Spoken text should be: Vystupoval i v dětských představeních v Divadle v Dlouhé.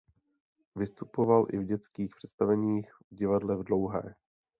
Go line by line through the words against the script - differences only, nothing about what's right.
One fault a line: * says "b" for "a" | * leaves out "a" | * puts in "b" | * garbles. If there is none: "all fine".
all fine